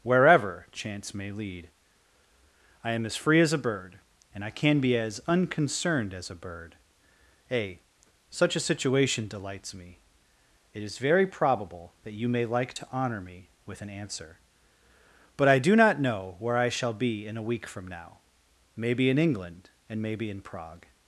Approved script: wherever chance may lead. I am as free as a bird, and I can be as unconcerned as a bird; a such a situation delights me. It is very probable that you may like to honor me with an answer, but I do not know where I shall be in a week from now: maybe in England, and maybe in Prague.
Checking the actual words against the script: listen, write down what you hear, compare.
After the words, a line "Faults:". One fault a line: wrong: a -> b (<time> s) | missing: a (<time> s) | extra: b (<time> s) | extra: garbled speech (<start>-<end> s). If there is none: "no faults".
wherever chance may lead. I am as free as a bird, and I can be as unconcerned as a bird; a such a situation delights me. It is very probable that you may like to honor me with an answer, but I do not know where I shall be in a week from now: maybe in England, and maybe in Prague.
Faults:
no faults